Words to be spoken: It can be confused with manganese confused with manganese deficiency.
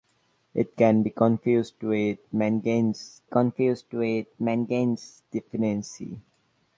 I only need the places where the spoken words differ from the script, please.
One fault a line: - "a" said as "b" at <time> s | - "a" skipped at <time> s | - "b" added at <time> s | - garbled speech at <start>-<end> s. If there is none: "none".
none